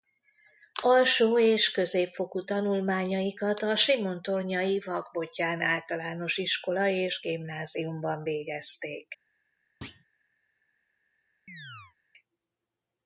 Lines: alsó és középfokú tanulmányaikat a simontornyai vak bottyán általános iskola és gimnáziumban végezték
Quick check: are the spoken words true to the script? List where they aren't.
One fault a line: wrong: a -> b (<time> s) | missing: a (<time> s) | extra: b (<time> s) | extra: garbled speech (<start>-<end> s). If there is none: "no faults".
no faults